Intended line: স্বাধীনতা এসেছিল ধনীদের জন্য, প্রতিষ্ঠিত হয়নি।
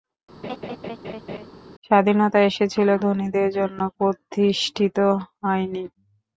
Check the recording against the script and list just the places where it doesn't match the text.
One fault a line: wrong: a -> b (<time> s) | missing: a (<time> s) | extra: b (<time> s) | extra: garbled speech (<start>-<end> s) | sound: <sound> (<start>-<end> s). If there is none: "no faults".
sound: laugh (0.4-1.5 s)